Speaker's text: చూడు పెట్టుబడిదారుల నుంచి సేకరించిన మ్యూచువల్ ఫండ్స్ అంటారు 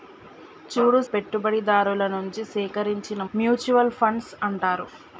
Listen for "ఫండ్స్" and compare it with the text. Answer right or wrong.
right